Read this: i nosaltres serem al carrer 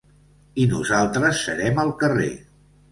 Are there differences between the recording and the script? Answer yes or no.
no